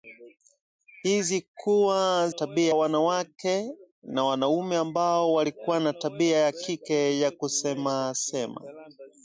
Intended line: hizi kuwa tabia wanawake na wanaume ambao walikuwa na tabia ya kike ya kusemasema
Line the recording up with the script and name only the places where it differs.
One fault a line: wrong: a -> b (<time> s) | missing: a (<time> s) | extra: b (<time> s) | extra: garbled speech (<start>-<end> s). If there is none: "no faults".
no faults